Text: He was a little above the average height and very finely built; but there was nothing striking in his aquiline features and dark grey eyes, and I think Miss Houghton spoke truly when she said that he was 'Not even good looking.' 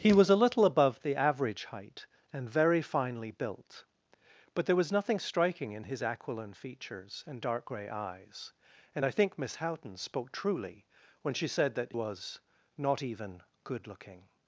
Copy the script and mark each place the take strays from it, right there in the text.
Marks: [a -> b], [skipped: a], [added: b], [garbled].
He was a little above the average height and very finely built; but there was nothing striking in his aquiline features and dark grey eyes, and I think Miss Houghton spoke truly when she said that [skipped: he] was 'Not even good looking.'